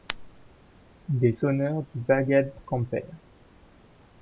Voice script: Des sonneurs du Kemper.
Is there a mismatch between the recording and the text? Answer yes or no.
yes